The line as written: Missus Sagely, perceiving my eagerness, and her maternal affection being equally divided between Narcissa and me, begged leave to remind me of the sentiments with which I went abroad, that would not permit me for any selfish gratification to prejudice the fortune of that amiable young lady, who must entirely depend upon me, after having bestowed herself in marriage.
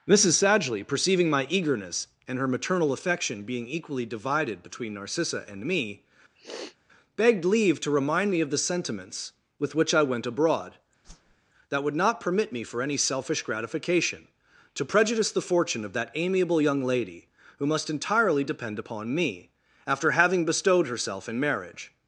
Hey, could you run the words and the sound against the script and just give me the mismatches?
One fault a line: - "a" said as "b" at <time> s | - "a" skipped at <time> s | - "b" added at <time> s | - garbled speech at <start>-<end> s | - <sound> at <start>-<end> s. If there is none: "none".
- sniff at 6.3-6.8 s
- whoosh at 11.0-11.4 s